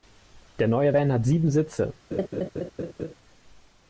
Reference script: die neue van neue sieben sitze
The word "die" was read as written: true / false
false